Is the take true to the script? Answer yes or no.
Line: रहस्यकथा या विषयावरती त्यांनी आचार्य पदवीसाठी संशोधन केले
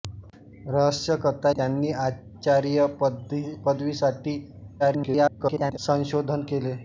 no